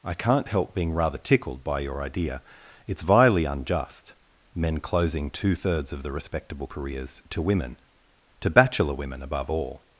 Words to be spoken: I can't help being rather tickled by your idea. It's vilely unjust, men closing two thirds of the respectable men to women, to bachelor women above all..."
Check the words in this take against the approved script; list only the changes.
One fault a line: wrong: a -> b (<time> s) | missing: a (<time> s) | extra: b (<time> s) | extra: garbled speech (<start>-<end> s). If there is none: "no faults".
wrong: men -> careers (6.7 s)